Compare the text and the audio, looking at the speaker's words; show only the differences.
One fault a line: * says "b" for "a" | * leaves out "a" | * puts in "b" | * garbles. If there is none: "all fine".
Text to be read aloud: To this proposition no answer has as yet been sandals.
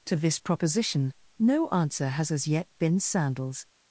all fine